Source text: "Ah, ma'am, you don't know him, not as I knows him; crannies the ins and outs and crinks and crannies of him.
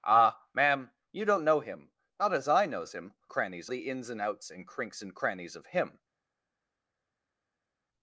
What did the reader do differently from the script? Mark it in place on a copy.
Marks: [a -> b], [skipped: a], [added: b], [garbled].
"Ah, ma'am, you don't know him, not as I knows him; crannies the ins and outs and crinks and crannies of him.